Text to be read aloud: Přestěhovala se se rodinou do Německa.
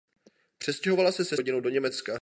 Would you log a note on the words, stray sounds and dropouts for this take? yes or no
no